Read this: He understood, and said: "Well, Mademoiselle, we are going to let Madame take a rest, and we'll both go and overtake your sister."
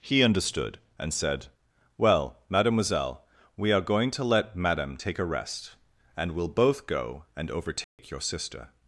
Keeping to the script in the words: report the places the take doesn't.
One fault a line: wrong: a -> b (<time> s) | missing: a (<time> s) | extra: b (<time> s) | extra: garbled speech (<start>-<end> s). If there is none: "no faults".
no faults